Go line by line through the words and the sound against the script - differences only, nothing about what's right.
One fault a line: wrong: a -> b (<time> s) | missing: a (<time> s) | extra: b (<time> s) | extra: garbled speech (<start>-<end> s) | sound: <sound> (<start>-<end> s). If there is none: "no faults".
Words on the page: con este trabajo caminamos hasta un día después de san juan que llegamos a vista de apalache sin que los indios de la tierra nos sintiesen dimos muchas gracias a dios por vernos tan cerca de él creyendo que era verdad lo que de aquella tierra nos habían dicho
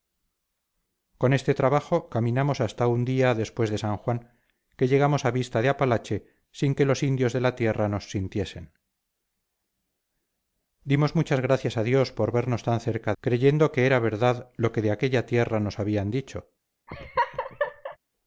missing: de él (13.1 s)
sound: laugh (16.9-18.0 s)